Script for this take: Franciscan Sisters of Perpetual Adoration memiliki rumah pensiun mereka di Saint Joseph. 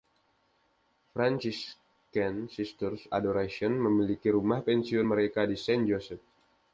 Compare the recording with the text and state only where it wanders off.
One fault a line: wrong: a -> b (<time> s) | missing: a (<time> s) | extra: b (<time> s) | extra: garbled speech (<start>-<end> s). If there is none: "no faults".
missing: of Perpetual (3.0 s)